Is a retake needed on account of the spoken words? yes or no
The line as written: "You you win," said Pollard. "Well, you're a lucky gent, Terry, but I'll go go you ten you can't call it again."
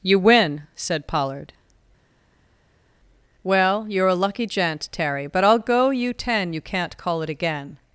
yes